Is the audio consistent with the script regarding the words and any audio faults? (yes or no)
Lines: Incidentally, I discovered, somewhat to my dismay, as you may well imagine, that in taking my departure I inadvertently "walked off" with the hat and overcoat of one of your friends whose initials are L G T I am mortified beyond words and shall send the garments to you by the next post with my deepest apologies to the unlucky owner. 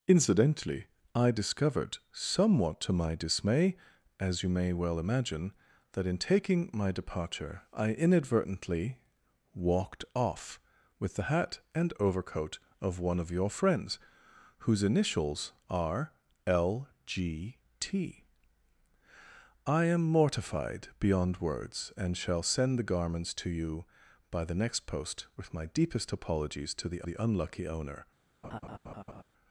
no